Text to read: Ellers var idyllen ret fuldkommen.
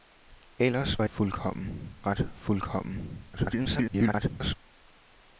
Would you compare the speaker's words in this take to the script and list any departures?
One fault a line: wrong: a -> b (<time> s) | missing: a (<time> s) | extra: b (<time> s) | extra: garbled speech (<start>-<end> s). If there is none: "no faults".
wrong: idyllen -> fuldkommen (1.1 s)
extra: garbled speech (3.3-4.6 s)